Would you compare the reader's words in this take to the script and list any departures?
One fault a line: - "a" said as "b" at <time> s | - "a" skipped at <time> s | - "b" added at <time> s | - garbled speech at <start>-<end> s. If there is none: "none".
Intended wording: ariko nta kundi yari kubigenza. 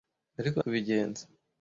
- "nta kundi yari" skipped at 0.6 s